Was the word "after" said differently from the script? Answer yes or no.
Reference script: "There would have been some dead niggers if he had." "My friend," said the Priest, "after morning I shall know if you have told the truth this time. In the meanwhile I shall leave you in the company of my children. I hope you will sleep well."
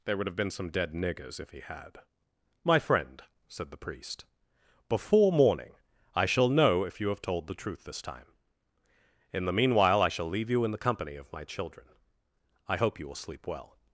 yes